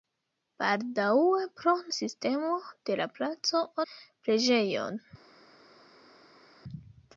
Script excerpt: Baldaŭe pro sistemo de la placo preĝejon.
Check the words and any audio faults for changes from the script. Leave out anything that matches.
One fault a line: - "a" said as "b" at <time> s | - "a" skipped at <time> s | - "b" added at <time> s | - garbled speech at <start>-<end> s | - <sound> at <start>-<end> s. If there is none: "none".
none